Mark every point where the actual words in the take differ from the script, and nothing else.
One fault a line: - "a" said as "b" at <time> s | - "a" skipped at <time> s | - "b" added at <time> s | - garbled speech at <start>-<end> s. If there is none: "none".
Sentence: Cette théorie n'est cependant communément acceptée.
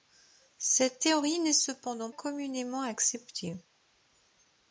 none